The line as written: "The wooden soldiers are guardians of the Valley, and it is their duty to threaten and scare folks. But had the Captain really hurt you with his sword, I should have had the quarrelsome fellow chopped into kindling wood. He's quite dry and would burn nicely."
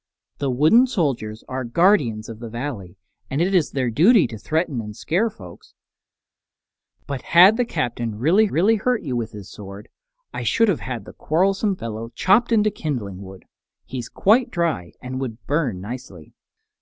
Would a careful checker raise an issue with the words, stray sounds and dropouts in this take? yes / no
yes